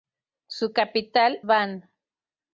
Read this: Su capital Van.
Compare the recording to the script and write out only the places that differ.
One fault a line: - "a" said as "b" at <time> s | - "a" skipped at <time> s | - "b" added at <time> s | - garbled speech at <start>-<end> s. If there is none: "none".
none